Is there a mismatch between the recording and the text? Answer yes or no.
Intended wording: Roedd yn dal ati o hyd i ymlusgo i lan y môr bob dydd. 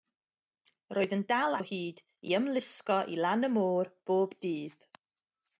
yes